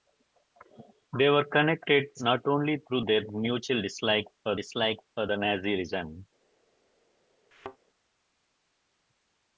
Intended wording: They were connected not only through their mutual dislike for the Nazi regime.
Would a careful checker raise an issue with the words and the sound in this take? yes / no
yes